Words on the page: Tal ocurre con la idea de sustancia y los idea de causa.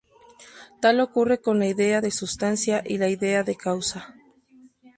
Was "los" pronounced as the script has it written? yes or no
no